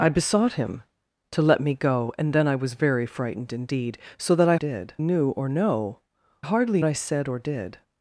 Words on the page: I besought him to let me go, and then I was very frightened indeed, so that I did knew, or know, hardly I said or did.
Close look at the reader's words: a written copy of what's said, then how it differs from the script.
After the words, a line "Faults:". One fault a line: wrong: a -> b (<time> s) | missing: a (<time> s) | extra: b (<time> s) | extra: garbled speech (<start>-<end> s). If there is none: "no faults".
I besought him to let me go, and then I was very frightened indeed, so that I did knew, or know, hardly I said or did.
Faults:
no faults